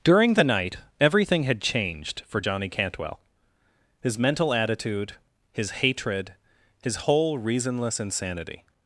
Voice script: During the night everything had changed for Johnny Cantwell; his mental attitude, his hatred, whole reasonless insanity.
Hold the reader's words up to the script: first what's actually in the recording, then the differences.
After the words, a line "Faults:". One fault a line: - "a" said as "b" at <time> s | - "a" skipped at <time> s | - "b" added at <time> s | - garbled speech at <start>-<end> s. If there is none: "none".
During the night everything had changed for Johnny Cantwell; his mental attitude, his hatred, his whole reasonless insanity.
Faults:
- "his" added at 6.8 s